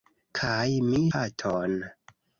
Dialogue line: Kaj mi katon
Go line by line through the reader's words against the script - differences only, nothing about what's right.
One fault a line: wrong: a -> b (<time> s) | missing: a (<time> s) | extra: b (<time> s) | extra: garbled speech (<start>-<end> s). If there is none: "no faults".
no faults